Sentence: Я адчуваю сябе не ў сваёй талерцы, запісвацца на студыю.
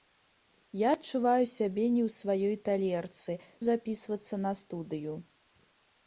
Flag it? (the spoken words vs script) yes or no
no